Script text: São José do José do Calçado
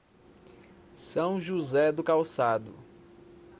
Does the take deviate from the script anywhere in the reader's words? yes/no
yes